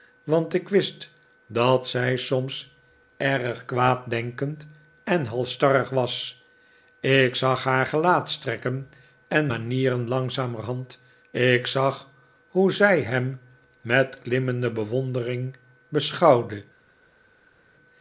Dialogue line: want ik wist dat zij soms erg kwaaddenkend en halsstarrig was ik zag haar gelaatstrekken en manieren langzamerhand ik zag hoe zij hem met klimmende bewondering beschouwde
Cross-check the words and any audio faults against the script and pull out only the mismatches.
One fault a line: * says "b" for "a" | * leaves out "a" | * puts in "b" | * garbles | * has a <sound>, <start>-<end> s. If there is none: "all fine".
all fine